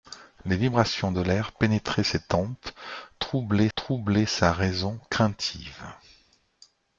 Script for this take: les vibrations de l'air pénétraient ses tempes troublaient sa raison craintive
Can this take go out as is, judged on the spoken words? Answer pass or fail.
fail